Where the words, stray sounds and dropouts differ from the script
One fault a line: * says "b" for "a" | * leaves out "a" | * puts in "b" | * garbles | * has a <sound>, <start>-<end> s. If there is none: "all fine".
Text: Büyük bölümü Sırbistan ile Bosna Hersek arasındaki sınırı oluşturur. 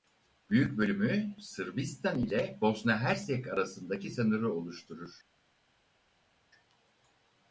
all fine